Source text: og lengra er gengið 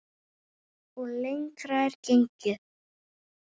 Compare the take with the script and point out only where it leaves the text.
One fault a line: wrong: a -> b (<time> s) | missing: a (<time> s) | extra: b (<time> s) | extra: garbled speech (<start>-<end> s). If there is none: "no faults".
no faults